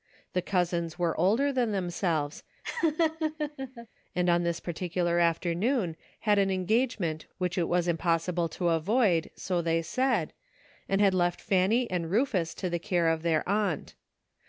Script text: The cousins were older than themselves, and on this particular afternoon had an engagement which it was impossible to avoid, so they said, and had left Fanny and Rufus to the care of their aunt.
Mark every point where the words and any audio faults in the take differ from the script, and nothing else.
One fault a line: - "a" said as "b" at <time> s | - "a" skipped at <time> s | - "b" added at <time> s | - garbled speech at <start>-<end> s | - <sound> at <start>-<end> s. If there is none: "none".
- laugh at 2.6-3.9 s